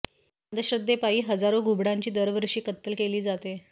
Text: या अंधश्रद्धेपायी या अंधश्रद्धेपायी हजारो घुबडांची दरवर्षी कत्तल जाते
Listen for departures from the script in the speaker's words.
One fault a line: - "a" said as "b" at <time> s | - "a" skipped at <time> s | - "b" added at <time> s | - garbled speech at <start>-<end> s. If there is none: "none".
- "या अंधश्रद्धेपायी" skipped at 1.2 s
- "केली" added at 3.0 s